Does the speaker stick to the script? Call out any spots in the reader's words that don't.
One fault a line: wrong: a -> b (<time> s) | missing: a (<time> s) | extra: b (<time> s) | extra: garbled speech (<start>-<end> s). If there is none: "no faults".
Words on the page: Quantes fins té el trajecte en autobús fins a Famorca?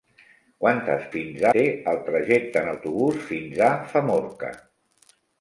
no faults